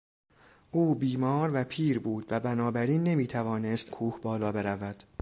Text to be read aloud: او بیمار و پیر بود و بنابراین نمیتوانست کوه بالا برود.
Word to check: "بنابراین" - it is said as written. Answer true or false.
true